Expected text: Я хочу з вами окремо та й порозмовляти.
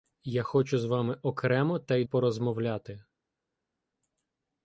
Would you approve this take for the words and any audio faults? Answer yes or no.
yes